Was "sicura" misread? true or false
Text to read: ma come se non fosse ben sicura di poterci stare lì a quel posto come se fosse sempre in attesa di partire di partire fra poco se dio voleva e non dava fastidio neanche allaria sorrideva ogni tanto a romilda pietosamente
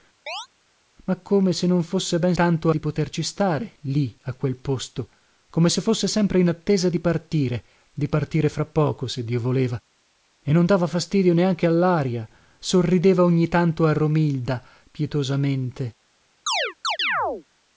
true